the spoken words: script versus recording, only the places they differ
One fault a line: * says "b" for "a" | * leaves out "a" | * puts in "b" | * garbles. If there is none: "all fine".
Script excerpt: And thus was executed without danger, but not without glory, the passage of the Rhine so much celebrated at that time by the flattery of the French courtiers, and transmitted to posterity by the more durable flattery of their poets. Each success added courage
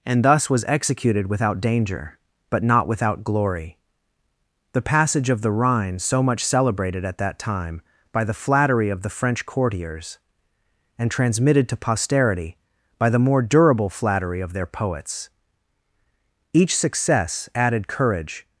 all fine